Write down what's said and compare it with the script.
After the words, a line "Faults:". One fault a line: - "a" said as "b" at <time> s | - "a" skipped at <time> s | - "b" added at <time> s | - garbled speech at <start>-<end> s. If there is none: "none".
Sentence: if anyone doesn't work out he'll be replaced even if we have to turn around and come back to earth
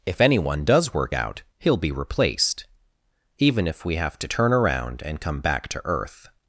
if anyone does work out he'll be replaced even if we have to turn around and come back to earth
Faults:
- "doesn't" said as "does" at 0.7 s